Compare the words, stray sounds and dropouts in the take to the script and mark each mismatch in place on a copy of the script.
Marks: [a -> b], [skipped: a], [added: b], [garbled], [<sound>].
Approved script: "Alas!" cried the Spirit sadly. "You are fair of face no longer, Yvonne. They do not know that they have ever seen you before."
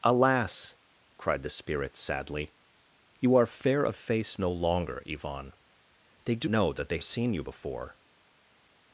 "Alas!" cried the Spirit sadly. "You are fair of face no longer, Yvonne. They do [skipped: not] know that they [skipped: have ever] seen you before."